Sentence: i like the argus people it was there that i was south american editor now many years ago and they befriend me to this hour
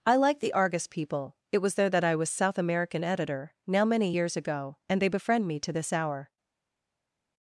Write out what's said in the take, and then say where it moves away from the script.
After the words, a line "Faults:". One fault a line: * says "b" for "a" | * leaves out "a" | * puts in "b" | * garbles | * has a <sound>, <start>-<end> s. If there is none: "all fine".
i like the argus people it was there that i was south american editor now many years ago and they befriend me to this hour
Faults:
all fine